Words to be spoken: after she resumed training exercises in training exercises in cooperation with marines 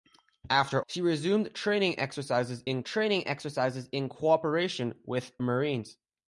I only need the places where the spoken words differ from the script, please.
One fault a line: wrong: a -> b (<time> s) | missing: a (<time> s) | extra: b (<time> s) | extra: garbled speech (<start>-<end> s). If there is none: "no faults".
no faults